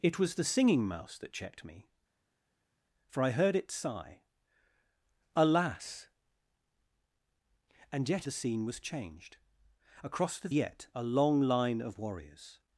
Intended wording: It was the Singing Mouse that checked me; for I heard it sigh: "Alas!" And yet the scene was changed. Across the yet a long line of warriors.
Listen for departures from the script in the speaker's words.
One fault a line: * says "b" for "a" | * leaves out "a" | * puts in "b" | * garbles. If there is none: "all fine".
all fine